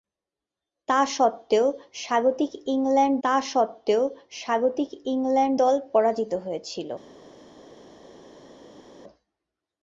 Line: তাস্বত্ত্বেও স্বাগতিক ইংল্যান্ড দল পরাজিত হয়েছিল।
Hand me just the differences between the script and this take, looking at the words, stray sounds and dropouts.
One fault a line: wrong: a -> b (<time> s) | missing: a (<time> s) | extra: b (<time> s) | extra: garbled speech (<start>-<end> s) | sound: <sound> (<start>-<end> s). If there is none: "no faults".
extra: তাস্বত্ত্বেও স্বাগতিক ইংল্যান্ড (3.2 s)